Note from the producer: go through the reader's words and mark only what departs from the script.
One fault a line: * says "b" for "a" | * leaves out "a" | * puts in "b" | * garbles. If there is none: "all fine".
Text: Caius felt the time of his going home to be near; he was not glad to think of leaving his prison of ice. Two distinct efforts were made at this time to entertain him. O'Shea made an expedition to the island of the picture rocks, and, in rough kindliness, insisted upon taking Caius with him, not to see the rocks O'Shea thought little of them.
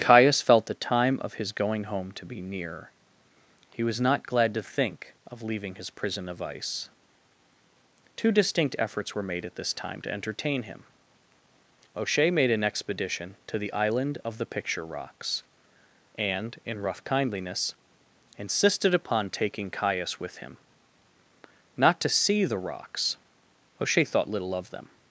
all fine